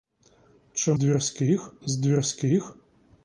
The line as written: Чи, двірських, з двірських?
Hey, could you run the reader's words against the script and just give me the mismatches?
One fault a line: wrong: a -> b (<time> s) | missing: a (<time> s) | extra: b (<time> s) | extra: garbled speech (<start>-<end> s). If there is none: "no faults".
no faults